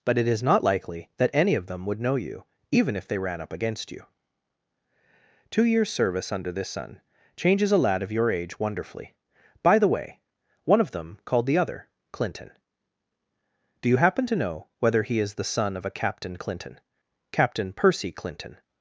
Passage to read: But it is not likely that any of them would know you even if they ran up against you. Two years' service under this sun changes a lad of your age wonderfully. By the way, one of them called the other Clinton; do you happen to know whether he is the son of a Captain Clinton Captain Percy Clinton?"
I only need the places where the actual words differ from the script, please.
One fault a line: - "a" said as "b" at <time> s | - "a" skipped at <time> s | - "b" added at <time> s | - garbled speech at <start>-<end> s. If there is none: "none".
none